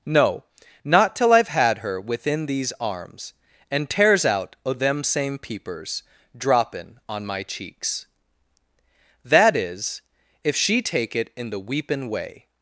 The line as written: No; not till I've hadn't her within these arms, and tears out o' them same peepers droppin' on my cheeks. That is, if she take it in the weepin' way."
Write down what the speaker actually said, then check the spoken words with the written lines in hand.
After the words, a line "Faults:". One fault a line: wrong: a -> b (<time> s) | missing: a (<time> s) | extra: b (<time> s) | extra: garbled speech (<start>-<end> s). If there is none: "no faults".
No; not till I've had her within these arms, and tears out o' them same peepers droppin' on my cheeks. That is, if she take it in the weepin' way."
Faults:
wrong: hadn't -> had (1.5 s)